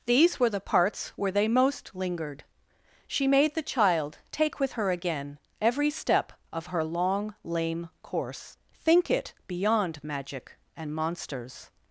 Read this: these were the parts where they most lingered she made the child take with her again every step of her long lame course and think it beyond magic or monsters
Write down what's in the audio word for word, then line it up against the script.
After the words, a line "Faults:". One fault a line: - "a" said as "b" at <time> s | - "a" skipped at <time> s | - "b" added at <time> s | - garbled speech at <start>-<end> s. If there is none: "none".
these were the parts where they most lingered she made the child take with her again every step of her long lame course think it beyond magic and monsters
Faults:
- "and" skipped at 8.6 s
- "or" said as "and" at 10.8 s